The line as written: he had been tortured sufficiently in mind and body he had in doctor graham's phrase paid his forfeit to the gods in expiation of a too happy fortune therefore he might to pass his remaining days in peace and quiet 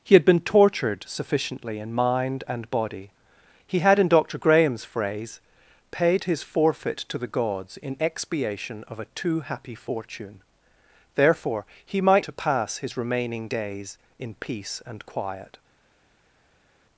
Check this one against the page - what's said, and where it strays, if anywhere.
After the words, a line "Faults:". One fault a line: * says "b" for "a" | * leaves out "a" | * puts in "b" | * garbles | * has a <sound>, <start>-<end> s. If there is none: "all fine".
he had been tortured sufficiently in mind and body he had in doctor graham's phrase paid his forfeit to the gods in expiation of a too happy fortune therefore he might to pass his remaining days in peace and quiet
Faults:
all fine